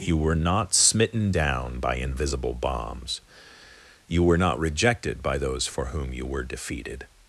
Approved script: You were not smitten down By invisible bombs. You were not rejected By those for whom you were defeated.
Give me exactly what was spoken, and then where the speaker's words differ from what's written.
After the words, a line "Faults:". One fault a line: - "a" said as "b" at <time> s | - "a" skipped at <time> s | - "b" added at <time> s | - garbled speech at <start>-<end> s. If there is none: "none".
You were not smitten down By invisible bombs. You were not rejected By those for whom you were defeated.
Faults:
none